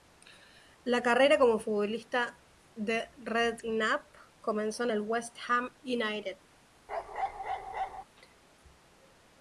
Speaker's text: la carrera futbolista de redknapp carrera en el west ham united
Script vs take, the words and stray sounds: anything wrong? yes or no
yes